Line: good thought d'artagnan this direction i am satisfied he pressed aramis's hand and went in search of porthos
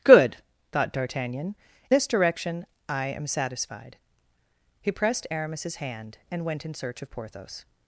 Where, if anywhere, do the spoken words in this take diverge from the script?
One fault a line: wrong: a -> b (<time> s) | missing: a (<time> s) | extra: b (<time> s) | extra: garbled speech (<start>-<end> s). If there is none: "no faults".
no faults